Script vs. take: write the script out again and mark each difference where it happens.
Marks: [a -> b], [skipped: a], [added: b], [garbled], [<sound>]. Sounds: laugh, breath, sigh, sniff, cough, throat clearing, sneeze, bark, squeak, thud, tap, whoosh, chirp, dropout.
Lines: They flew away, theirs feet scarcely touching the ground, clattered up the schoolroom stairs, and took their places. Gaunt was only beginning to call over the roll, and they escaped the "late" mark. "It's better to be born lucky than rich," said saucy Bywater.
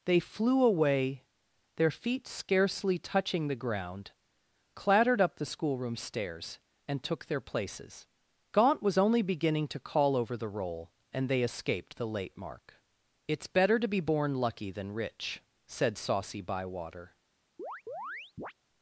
They flew away, [theirs -> their] feet scarcely touching the ground, clattered up the schoolroom stairs, and took their places. Gaunt was only beginning to call over the roll, and they escaped the "late" mark. "It's better to be born lucky than rich," said saucy Bywater. [chirp]